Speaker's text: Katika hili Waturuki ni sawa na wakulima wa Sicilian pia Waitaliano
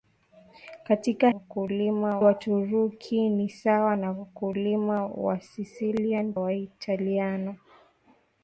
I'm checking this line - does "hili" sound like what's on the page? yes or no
no